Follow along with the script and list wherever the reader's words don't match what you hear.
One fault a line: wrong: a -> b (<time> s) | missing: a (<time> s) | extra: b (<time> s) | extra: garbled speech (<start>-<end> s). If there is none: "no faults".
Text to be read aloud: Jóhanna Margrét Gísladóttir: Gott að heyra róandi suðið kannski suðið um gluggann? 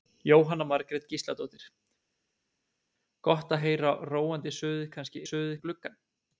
no faults